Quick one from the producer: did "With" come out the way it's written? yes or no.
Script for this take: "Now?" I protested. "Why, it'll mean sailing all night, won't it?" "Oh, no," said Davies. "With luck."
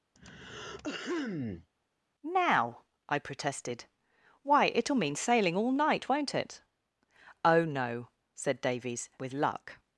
yes